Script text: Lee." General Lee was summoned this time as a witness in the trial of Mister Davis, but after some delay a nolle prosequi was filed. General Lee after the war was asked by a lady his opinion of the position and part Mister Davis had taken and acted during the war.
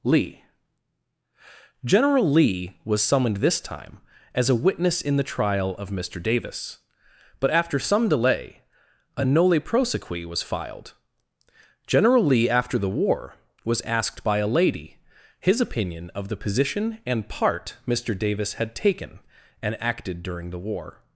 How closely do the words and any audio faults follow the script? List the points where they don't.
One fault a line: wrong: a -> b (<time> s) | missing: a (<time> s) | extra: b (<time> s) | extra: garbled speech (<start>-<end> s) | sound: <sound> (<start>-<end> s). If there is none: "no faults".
no faults